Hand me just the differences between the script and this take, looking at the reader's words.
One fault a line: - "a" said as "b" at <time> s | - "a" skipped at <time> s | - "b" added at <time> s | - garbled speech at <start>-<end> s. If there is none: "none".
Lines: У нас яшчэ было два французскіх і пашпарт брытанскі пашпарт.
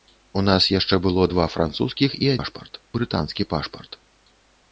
none